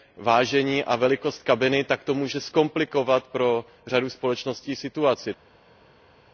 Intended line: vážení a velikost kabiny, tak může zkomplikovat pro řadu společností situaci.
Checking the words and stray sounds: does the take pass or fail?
fail